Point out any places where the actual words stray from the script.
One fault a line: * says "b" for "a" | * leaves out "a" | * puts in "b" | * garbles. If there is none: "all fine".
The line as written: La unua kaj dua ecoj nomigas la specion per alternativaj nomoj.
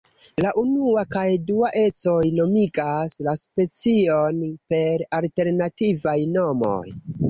all fine